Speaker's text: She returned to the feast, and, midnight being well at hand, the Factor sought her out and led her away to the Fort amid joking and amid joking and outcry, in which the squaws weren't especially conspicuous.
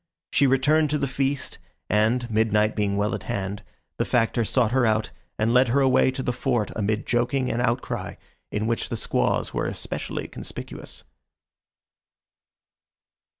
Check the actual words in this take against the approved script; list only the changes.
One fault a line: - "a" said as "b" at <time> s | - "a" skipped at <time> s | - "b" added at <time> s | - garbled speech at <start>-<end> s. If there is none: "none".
- "amid joking and" skipped at 7.6 s
- "weren't" said as "were" at 9.5 s